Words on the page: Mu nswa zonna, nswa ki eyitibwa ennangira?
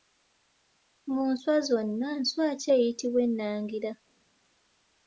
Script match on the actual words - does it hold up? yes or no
yes